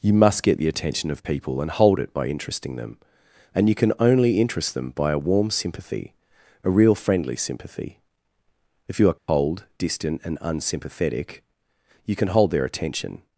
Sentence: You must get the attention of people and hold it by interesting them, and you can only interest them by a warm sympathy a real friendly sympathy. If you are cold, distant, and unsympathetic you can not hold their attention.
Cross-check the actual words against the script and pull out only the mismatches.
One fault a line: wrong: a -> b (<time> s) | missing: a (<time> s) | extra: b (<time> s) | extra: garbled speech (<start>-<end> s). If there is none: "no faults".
missing: not (12.3 s)